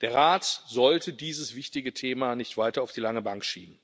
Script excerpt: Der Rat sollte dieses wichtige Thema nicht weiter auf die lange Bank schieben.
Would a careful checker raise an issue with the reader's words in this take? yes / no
no